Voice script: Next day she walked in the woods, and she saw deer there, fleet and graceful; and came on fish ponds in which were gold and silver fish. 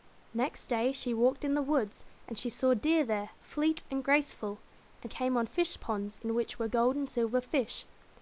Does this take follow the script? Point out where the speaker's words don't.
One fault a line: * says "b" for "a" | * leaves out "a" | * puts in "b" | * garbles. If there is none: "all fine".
all fine